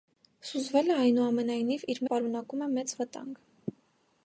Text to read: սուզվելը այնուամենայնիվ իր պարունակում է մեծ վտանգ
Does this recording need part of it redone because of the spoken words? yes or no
no